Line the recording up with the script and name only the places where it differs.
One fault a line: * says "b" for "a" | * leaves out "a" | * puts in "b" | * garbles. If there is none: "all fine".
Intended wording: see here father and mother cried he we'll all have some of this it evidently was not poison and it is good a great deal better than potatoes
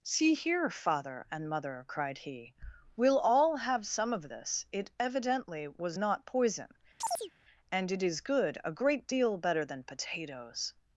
all fine